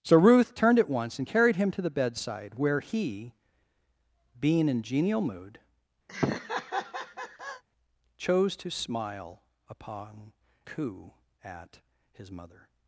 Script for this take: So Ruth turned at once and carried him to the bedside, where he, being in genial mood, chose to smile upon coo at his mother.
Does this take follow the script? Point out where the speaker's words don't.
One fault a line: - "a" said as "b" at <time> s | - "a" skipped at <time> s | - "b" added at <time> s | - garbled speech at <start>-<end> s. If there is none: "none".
none